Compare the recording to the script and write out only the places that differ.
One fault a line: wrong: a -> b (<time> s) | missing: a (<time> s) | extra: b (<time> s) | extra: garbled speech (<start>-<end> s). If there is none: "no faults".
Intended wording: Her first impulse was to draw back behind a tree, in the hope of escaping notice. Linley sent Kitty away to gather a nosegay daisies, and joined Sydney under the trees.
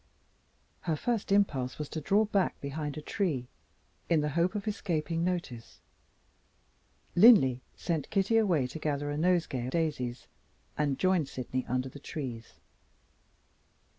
no faults